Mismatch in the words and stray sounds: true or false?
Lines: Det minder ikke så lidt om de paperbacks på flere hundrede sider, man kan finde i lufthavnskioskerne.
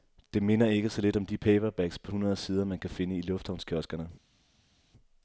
true